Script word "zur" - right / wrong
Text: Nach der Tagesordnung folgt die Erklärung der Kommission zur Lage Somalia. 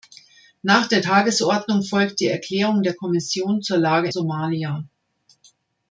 right